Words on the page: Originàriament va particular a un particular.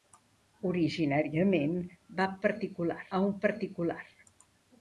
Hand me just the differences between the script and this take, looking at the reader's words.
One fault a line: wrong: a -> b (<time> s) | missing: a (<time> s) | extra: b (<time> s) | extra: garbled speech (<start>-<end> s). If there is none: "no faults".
no faults